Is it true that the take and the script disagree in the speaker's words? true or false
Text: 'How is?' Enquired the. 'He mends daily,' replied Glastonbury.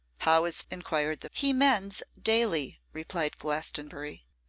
false